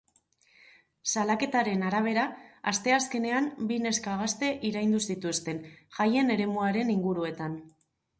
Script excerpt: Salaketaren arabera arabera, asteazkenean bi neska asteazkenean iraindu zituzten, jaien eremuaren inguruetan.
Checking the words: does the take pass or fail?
fail